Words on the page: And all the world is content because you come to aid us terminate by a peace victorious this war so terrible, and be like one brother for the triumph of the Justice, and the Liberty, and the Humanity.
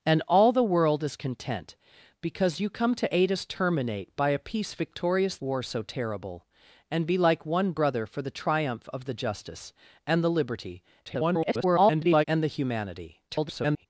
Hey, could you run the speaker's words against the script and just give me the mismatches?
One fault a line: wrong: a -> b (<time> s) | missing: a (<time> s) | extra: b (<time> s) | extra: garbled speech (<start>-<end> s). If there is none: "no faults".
missing: this (5.4 s)
extra: garbled speech (11.0-12.2 s)
extra: garbled speech (13.3-13.9 s)